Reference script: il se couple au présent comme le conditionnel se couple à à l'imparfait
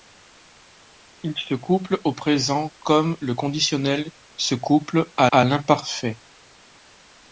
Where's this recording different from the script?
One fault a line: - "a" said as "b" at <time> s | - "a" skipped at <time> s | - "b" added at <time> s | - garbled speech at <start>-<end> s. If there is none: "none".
none